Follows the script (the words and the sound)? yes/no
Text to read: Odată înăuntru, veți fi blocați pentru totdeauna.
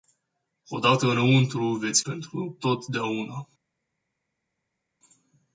no